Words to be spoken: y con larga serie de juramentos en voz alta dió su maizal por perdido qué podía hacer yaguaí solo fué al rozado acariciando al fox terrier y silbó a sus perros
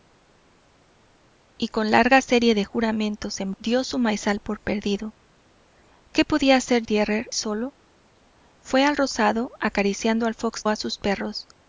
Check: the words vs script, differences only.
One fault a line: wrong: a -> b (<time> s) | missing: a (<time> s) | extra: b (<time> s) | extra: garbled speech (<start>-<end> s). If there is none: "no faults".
missing: voz alta (3.5 s)
wrong: yaguaí -> terrier (6.8 s)
missing: terrier y silbó (10.6 s)